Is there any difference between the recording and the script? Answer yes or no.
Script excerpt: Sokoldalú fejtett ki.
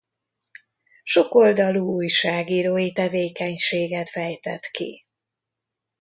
yes